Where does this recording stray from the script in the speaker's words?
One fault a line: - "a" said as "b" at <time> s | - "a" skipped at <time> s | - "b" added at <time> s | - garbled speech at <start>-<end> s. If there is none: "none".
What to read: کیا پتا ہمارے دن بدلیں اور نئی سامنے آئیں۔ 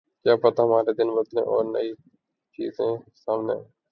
- "چیزیں" added at 2.6 s